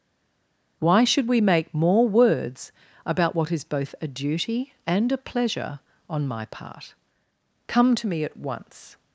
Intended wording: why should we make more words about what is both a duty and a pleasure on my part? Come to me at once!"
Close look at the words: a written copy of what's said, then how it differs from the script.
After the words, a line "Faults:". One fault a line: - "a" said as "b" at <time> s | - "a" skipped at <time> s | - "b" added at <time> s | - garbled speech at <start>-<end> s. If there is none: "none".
why should we make more words about what is both a duty and a pleasure on my part? Come to me at once!"
Faults:
none